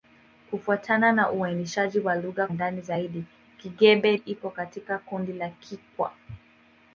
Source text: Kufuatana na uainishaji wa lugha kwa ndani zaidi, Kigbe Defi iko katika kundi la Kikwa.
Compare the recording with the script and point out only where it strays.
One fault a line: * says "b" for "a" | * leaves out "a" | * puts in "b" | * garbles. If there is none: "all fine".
* leaves out "kwa"
* leaves out "Defi"